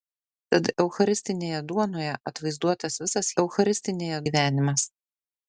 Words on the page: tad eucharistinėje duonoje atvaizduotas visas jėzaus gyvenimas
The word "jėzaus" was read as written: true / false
false